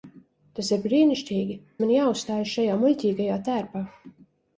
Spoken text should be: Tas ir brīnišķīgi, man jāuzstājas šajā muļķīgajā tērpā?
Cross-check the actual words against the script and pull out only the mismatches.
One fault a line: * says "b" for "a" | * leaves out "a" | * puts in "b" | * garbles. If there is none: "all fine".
all fine